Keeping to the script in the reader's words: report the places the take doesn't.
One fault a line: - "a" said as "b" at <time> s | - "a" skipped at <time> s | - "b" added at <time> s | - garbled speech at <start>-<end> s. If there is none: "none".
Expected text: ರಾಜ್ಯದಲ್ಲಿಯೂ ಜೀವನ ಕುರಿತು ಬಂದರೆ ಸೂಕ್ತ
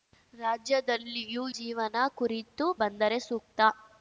none